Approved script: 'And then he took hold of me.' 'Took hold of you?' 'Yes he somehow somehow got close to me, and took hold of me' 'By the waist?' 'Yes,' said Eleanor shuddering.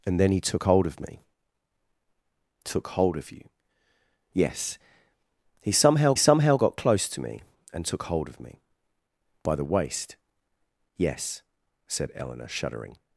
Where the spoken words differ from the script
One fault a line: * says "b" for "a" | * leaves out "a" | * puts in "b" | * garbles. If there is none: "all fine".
all fine